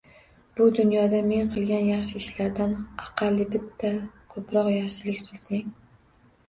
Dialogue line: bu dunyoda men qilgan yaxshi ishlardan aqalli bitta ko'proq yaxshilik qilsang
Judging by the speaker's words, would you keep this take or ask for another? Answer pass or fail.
pass